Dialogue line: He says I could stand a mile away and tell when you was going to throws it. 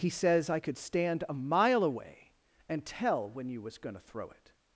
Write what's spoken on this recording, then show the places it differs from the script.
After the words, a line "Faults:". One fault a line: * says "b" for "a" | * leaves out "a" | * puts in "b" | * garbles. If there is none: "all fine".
He says I could stand a mile away and tell when you was going to throw it.
Faults:
* says "throw" for "throws"